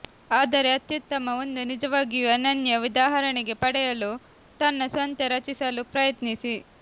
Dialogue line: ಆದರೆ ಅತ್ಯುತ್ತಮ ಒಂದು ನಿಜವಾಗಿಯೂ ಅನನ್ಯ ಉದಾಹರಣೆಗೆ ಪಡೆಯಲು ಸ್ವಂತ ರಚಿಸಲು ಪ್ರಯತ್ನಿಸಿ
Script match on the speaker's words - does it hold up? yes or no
no